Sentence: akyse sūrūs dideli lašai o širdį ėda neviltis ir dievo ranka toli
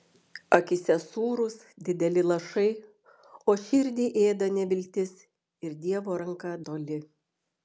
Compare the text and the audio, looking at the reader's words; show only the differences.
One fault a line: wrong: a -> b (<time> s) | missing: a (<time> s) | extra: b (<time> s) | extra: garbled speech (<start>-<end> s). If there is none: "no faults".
no faults